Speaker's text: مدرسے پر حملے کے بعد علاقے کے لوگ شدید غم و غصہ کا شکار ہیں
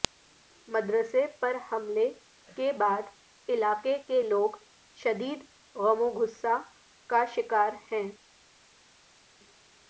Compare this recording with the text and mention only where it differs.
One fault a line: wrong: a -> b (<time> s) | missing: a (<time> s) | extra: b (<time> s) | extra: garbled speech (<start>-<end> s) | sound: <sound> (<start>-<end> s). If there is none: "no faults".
no faults